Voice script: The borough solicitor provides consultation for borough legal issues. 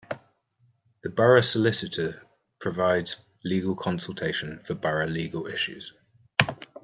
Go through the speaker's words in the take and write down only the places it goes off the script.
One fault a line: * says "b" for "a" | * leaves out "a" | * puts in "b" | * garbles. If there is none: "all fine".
* puts in "legal"